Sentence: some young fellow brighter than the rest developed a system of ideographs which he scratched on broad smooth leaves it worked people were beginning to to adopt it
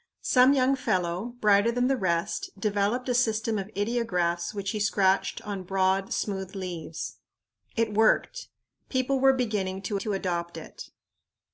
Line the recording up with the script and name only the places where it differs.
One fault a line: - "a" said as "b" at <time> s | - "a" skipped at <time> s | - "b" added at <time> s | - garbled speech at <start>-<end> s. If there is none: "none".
none